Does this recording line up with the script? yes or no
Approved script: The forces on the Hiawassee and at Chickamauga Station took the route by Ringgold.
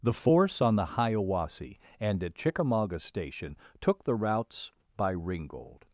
no